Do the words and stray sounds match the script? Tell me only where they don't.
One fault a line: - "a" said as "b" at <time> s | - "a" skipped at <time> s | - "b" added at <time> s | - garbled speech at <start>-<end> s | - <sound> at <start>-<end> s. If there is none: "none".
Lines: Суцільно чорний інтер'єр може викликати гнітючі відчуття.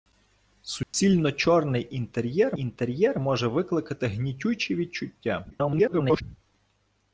- dropout at 0.8-0.9 s
- "інтер'єр" added at 2.6 s
- garbled speech at 5.5-6.2 s